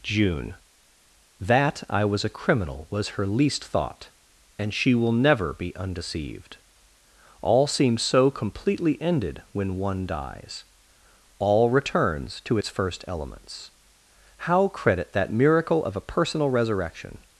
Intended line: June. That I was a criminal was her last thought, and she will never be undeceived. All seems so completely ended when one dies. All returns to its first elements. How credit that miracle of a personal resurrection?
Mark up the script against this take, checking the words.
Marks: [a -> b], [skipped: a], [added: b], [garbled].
June. That I was a criminal was her [last -> least] thought, and she will never be undeceived. All seems so completely ended when one dies. All returns to its first elements. How credit that miracle of a personal resurrection?